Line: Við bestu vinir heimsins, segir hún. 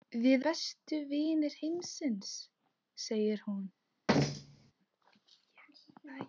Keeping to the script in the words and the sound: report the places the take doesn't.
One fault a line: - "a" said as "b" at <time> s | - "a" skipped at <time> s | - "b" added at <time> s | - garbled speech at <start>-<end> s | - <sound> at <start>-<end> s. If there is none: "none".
- thud at 4.1-4.7 s